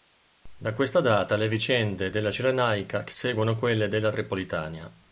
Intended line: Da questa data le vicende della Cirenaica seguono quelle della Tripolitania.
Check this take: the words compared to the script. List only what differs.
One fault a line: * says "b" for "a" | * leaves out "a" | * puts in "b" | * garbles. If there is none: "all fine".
all fine